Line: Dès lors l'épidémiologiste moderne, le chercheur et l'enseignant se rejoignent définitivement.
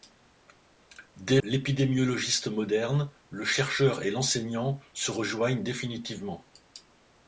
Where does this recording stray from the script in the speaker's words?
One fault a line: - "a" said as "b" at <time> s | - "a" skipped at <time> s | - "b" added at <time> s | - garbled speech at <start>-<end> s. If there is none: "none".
- "lors" skipped at 1.4 s